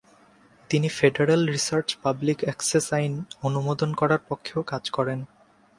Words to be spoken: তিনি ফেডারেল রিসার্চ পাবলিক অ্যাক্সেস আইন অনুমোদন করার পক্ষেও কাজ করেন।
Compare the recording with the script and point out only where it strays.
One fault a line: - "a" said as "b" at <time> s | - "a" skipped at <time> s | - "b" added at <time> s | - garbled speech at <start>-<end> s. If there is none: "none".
none